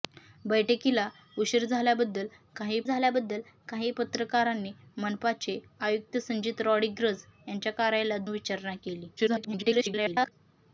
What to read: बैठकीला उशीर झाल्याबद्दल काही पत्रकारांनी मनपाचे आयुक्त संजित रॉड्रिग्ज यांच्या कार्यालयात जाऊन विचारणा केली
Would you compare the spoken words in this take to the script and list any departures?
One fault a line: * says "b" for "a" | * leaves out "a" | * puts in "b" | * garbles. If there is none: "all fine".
* puts in "झाल्याबद्दल काही"
* leaves out "जाऊन"
* garbles